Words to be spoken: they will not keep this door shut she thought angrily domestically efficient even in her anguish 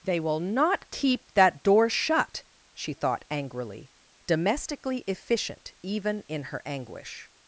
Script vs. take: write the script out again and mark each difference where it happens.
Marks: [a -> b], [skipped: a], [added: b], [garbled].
they will not keep [this -> that] door shut she thought angrily domestically efficient even in her anguish